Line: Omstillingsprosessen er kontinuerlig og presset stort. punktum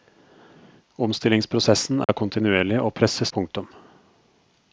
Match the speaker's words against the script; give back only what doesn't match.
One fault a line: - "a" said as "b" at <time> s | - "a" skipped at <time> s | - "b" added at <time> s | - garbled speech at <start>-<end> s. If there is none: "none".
- "stort" skipped at 3.3 s